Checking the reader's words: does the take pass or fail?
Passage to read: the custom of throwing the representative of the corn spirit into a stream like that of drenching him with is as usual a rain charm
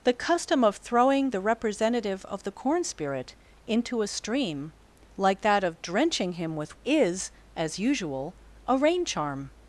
pass